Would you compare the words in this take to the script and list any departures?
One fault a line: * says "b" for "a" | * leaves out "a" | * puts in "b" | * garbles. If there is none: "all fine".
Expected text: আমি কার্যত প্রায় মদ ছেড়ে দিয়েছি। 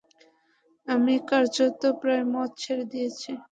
all fine